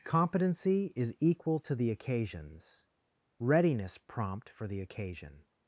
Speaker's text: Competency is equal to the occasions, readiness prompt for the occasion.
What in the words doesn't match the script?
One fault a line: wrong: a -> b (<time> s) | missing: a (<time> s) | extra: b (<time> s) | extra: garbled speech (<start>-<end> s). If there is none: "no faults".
no faults